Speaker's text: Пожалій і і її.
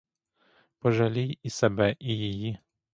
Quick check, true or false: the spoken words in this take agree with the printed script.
false